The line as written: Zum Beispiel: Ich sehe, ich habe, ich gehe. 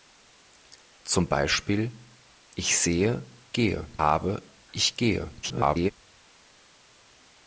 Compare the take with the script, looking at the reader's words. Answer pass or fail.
fail